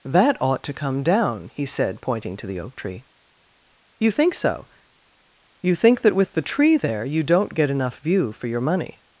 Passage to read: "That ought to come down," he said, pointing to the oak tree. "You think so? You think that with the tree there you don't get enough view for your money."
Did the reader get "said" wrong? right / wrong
right